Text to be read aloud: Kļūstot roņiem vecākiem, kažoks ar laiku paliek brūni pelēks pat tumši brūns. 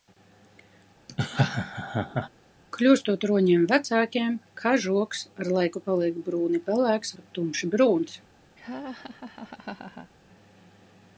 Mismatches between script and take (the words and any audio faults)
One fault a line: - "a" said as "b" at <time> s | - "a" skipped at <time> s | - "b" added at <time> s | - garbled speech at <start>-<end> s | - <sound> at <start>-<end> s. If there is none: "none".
- laugh at 1.1-2.3 s
- laugh at 8.6-10.1 s